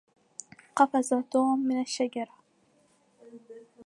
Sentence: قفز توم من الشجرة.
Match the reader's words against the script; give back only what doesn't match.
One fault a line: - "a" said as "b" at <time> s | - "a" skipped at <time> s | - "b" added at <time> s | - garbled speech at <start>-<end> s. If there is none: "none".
none